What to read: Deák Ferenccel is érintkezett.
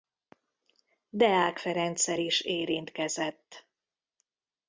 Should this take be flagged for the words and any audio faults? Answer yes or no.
no